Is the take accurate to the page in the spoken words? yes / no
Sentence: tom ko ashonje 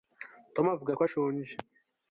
no